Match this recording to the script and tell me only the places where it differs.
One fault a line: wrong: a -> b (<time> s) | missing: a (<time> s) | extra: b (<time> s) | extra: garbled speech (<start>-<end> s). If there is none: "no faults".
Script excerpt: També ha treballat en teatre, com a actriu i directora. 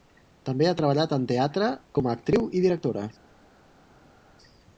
no faults